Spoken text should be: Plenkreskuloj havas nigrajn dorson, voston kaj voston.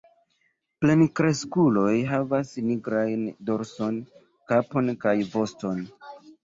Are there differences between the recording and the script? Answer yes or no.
yes